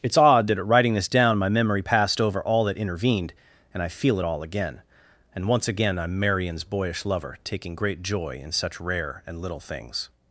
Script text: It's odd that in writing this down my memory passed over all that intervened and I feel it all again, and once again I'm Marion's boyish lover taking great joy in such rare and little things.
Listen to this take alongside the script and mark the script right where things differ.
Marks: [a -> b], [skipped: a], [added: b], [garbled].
It's odd that [in -> at] writing this down my memory passed over all that intervened and I feel it all again, and once again I'm Marion's boyish lover taking great joy in such rare and little things.